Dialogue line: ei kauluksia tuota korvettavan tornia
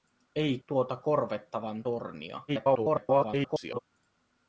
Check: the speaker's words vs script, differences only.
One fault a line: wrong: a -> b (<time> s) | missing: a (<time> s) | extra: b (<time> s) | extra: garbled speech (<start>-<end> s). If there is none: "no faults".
missing: kauluksia (0.6 s)
extra: garbled speech (2.5-3.8 s)